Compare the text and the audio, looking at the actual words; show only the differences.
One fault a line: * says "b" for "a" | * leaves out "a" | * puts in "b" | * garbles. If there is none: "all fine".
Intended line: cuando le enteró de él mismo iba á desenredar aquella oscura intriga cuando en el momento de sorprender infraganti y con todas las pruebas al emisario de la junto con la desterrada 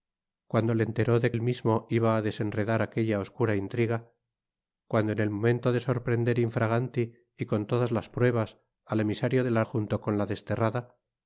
all fine